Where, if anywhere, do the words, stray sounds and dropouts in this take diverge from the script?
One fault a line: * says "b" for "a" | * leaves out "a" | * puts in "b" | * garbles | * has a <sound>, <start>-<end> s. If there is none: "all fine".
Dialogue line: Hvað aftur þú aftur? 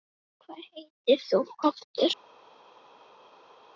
* says "heitir" for "aftur"